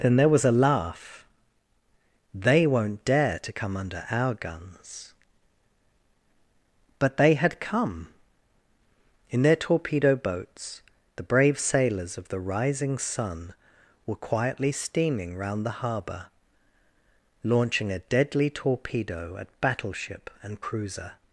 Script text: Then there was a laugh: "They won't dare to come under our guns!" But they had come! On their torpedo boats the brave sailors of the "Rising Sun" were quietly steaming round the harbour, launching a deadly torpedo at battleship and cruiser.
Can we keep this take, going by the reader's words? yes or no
no